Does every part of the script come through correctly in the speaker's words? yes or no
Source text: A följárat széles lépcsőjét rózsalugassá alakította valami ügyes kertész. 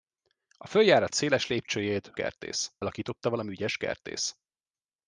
no